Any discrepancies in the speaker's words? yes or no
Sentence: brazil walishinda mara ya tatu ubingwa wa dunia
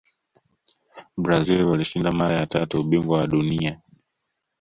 no